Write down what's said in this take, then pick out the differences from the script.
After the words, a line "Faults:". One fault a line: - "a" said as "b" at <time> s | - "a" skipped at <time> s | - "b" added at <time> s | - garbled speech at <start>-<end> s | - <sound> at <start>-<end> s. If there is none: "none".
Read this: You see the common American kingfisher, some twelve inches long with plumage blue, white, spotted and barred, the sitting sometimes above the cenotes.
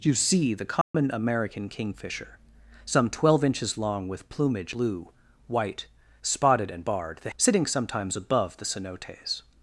You see the common American kingfisher, some twelve inches long with plumage blue, white, spotted and barred, the sitting sometimes above the cenotes.
Faults:
- dropout at 0.8-0.9 s